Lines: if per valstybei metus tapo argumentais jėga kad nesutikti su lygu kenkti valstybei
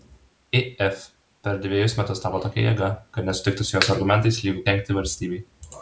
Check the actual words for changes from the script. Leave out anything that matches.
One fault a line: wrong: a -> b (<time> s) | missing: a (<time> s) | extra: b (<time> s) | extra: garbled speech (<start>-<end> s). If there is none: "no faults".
wrong: valstybei -> dvejus (1.6 s)
wrong: argumentais -> tokia (2.4 s)
extra: jos argumentais (3.8 s)